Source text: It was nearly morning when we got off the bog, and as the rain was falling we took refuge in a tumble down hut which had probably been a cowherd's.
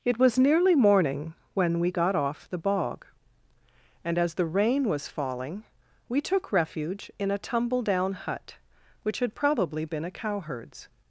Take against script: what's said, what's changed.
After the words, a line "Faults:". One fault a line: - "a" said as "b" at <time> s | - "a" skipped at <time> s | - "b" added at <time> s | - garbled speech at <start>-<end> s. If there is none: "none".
It was nearly morning when we got off the bog, and as the rain was falling we took refuge in a tumble down hut which had probably been a cowherd's.
Faults:
none